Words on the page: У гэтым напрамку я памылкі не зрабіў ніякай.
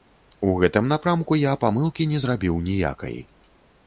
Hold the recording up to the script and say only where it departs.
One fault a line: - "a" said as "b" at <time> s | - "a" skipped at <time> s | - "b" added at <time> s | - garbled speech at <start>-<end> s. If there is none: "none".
none